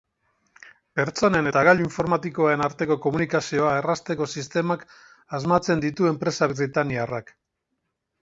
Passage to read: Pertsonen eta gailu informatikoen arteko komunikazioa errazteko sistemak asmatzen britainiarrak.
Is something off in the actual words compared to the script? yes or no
yes